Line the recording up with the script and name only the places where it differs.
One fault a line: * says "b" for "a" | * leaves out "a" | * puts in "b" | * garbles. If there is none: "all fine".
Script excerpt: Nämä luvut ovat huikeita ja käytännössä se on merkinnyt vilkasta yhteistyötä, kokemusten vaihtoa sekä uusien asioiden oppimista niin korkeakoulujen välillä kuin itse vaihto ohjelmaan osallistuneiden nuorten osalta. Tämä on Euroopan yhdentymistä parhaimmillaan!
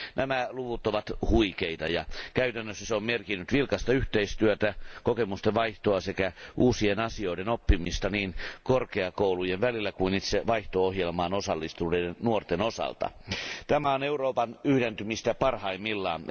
all fine